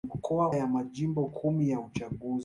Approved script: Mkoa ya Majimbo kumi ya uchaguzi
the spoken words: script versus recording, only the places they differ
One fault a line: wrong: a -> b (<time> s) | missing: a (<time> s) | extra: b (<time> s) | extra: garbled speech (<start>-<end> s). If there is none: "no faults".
no faults